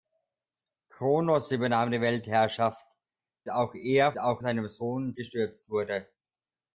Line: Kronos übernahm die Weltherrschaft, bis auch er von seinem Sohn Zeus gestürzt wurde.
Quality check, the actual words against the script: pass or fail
fail